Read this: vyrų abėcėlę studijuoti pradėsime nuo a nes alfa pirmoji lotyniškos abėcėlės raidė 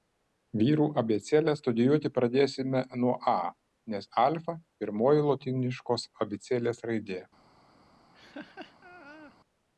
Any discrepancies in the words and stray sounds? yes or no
yes